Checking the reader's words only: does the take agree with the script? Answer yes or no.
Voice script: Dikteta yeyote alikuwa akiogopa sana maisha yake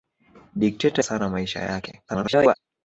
no